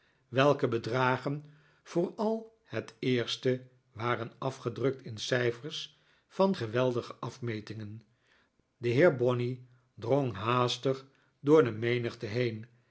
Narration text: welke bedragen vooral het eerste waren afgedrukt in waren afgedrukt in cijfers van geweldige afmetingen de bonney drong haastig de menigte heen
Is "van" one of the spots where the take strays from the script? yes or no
no